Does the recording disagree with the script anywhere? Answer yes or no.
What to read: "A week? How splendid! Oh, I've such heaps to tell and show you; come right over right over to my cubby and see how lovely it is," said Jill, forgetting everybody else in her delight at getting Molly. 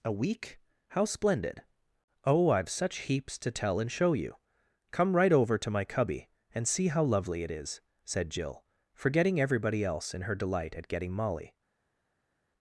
yes